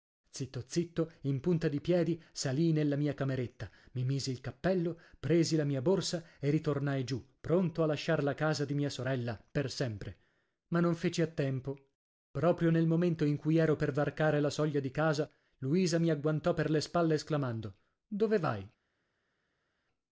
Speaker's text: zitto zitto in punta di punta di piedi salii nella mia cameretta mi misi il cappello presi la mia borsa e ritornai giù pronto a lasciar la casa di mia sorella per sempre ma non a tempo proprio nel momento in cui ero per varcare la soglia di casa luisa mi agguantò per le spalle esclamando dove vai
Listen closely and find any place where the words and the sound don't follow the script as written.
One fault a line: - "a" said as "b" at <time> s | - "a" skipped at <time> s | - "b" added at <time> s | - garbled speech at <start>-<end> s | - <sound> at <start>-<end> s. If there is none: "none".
- "punta di" skipped at 1.8 s
- "feci" added at 10.9 s